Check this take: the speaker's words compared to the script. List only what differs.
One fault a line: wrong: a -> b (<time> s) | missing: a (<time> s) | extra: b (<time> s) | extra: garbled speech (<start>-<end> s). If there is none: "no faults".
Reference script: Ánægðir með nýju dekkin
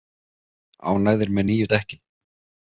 no faults